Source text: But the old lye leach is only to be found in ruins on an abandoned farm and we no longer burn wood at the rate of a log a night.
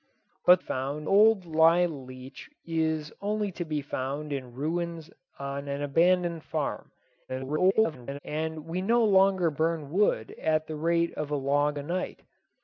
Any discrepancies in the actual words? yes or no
yes